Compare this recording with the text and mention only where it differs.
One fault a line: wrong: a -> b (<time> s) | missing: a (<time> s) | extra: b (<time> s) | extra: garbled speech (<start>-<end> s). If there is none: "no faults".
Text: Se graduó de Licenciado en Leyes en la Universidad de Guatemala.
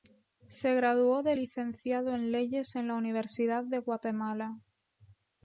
no faults